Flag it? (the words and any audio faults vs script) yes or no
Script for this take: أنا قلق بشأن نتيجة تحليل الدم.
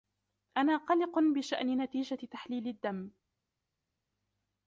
no